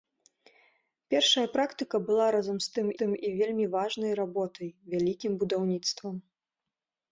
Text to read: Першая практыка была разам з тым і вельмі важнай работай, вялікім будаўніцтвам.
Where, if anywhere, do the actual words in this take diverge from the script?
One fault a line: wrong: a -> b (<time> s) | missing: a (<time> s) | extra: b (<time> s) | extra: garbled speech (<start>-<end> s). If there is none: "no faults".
extra: тым (3.0 s)